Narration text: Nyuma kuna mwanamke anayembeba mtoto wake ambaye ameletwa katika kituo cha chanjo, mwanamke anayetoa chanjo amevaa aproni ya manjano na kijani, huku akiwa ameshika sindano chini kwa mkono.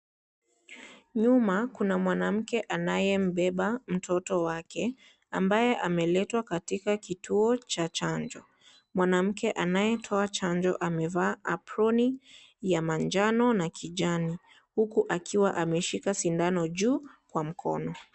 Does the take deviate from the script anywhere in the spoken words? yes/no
yes